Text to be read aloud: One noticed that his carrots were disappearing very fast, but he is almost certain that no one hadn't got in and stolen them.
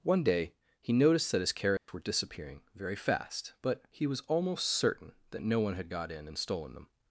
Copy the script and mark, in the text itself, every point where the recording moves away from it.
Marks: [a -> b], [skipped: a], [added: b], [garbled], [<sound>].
One [added: day he] noticed that his carrots [dropout] were disappearing very fast, but he [is -> was] almost certain that no one [hadn't -> had] got in and stolen them.